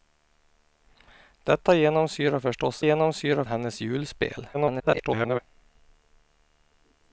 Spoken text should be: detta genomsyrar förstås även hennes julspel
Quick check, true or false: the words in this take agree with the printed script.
false